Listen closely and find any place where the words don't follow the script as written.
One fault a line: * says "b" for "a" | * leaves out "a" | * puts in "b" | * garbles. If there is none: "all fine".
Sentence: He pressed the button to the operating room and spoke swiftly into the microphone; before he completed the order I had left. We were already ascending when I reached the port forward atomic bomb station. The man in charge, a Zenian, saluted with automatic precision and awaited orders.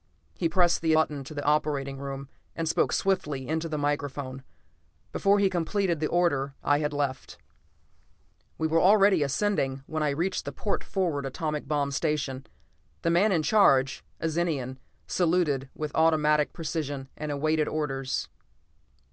all fine